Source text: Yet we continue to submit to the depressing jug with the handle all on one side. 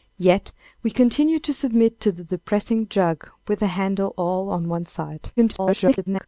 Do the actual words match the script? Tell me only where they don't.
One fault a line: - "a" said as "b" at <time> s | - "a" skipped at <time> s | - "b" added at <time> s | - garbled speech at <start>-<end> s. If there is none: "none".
- garbled speech at 5.4-6.3 s